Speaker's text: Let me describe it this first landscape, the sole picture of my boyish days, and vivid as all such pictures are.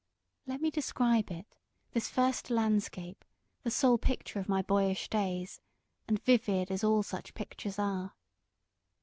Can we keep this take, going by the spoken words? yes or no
yes